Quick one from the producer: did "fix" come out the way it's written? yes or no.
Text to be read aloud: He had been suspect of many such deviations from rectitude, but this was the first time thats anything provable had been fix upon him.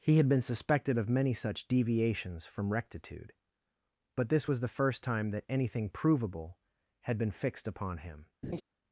no